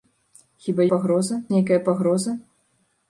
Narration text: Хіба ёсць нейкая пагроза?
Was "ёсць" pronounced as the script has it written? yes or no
no